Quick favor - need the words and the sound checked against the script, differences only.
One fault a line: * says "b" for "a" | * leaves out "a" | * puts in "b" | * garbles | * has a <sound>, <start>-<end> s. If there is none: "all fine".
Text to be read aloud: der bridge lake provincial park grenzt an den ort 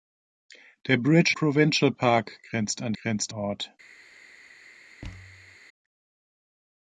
* leaves out "lake"
* says "grenzt" for "den"
* has a thud, 5.0-5.6 s